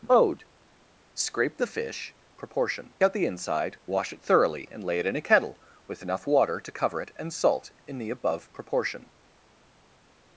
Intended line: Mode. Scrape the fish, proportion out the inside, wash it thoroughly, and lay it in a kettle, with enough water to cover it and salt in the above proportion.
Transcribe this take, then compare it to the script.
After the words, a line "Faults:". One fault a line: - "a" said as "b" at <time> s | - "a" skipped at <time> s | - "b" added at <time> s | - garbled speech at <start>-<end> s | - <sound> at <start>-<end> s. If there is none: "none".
Mode. Scrape the fish, proportion out the inside, wash it thoroughly, and lay it in a kettle, with enough water to cover it and salt in the above proportion.
Faults:
none